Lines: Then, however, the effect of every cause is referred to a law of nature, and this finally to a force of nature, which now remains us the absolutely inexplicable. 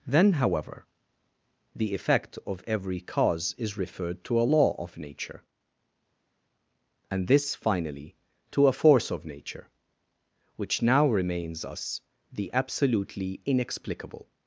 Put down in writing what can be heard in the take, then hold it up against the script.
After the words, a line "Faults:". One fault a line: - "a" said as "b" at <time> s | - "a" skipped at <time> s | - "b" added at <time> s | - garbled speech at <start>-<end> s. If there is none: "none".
Then, however, the effect of every cause is referred to a law of nature, and this finally to a force of nature, which now remains us the absolutely inexplicable.
Faults:
none